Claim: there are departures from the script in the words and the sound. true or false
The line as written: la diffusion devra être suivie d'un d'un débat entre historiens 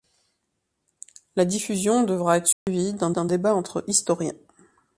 true